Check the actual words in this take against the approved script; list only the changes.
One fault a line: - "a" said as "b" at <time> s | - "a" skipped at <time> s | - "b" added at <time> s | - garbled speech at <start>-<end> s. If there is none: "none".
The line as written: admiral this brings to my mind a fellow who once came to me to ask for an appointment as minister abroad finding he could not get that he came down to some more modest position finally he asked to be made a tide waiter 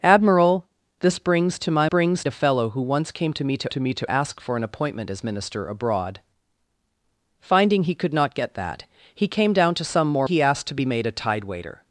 - "mind" said as "brings" at 1.8 s
- "to me to" added at 3.7 s
- "modest position finally" skipped at 10.3 s